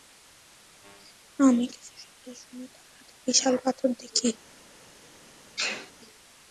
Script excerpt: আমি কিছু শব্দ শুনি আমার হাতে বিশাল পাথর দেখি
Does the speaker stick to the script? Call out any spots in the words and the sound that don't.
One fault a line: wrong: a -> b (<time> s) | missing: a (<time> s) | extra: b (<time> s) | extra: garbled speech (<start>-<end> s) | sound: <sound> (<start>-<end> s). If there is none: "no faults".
wrong: আমার -> তার (2.7 s)
sound: sneeze (5.6-5.9 s)